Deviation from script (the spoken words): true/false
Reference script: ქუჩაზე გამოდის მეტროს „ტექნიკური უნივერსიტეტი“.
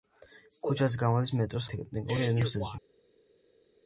false